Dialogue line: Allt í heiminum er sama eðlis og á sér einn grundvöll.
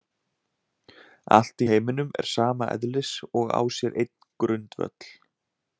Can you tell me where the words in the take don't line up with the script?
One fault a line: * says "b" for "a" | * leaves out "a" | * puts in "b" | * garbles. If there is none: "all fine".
all fine